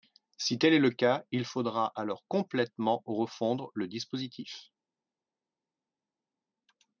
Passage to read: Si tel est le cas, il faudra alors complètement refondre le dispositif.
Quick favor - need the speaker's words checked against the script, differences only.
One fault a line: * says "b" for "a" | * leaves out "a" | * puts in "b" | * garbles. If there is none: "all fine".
all fine